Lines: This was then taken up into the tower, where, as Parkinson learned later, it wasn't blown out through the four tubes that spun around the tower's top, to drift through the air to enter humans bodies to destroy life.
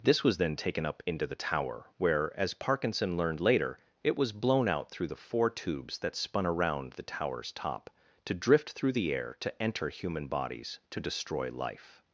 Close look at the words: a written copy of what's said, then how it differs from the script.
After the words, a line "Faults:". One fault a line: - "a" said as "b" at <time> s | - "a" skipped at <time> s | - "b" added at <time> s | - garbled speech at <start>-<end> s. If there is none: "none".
This was then taken up into the tower, where, as Parkinson learned later, it was blown out through the four tubes that spun around the tower's top, to drift through the air to enter human bodies to destroy life.
Faults:
- "wasn't" said as "was" at 4.2 s
- "humans" said as "human" at 9.9 s